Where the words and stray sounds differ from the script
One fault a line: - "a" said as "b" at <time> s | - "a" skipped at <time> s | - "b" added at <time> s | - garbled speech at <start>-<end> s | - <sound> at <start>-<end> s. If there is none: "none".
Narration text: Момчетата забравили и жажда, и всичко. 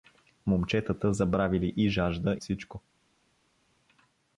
- "и" skipped at 2.4 s